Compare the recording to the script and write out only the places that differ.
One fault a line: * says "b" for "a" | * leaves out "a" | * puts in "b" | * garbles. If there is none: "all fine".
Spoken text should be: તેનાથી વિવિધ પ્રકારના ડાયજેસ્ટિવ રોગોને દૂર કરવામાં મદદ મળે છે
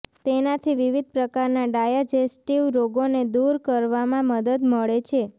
all fine